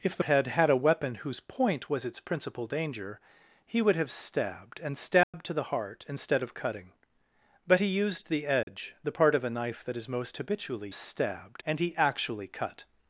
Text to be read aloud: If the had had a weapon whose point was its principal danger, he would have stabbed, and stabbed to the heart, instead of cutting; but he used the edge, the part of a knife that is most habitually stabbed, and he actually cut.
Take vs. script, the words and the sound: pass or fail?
fail